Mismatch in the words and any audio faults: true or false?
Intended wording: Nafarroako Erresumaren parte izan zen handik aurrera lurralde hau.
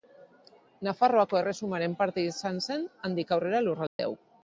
true